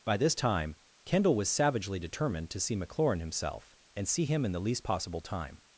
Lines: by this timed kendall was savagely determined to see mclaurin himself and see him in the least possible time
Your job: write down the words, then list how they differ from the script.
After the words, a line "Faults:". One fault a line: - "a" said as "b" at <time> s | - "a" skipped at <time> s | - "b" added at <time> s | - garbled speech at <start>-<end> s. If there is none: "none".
by this time kendall was savagely determined to see mclaurin himself and see him in the least possible time
Faults:
- "timed" said as "time" at 0.3 s